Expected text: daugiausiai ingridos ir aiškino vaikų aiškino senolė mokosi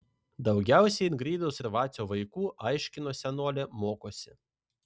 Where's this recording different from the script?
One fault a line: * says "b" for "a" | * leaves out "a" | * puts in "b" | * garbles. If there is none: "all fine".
* says "vacio" for "aiškino"